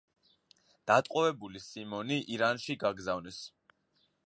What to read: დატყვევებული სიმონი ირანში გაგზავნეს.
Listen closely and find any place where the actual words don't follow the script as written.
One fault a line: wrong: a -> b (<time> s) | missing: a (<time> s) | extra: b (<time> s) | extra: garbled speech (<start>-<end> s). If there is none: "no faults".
no faults